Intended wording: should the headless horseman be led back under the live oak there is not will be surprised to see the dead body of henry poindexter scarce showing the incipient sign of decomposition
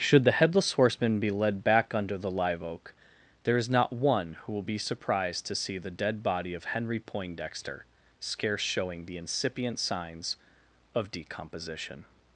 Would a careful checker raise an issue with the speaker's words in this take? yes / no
yes